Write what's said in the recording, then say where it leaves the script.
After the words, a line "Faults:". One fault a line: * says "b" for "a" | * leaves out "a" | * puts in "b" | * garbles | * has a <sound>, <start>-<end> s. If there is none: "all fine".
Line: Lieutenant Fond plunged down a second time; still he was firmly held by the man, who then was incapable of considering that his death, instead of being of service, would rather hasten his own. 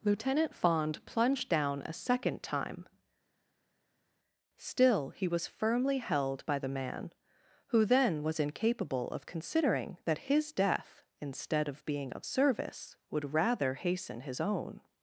Lieutenant Fond plunged down a second time; still he was firmly held by the man, who then was incapable of considering that his death, instead of being of service, would rather hasten his own.
Faults:
all fine